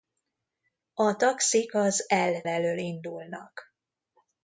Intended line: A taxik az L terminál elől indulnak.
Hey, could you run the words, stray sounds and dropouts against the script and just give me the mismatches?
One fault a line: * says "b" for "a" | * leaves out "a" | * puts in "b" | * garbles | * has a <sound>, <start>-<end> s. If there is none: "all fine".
* leaves out "terminál"